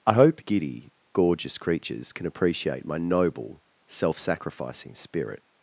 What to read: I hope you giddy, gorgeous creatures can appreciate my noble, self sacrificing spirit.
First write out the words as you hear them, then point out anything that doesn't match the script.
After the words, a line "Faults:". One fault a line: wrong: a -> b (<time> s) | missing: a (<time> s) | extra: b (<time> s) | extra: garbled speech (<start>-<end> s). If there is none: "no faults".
I hope giddy, gorgeous creatures can appreciate my noble, self sacrificing spirit.
Faults:
missing: you (0.4 s)